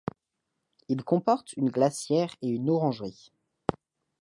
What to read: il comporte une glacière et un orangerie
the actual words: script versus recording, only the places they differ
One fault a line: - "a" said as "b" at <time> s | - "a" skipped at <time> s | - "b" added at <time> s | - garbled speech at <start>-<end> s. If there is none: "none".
- "un" said as "une" at 2.5 s